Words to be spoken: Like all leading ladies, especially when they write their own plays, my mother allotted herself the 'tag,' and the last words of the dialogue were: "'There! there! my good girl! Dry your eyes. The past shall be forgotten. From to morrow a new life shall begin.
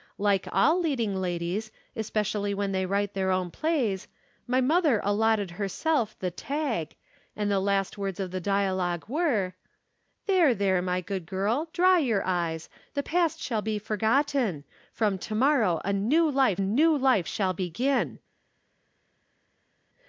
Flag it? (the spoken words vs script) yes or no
yes